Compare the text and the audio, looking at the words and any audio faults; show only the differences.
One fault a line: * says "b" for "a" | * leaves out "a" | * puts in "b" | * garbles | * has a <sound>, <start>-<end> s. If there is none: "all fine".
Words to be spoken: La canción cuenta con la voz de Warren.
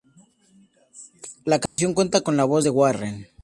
* has a dropout, 1.7-1.8 s